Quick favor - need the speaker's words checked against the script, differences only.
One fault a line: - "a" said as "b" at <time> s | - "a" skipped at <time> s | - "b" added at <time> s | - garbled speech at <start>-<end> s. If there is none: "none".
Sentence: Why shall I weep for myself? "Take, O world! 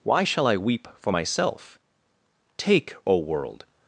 none